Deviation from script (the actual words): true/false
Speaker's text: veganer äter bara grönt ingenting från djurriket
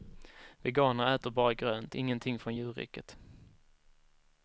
false